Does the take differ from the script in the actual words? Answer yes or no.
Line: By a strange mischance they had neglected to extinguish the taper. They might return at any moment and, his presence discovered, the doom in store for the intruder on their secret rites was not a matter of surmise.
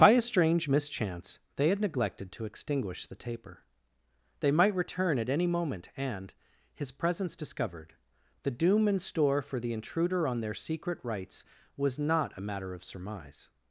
no